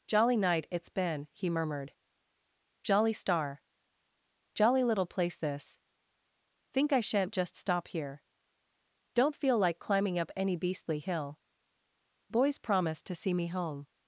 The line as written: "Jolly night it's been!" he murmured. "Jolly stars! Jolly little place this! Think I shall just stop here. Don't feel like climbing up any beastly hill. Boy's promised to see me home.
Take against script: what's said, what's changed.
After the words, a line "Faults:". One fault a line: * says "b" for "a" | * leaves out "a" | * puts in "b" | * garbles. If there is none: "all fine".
"Jolly night it's been!" he murmured. "Jolly star! Jolly little place this! Think I shan't just stop here. Don't feel like climbing up any beastly hill. Boy's promised to see me home.
Faults:
* says "star" for "stars"
* says "shan't" for "shall"